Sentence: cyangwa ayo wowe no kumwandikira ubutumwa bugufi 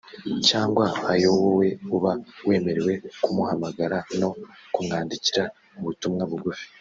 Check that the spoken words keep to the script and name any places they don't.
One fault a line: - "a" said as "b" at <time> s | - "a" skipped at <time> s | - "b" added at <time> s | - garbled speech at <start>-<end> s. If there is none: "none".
- "uba wemerewe kumuhamagara" added at 1.9 s